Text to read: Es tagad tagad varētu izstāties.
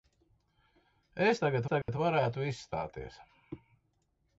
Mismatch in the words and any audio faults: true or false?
true